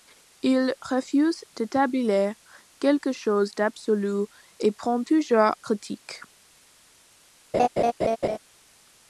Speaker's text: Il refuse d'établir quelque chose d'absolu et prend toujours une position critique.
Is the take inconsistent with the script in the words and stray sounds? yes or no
yes